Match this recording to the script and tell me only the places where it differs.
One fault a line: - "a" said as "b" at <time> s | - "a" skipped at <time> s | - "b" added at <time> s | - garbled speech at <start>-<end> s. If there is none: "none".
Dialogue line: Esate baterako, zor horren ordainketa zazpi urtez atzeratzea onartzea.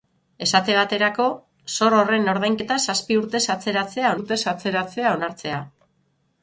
- "urtez atzeratzea" added at 4.1 s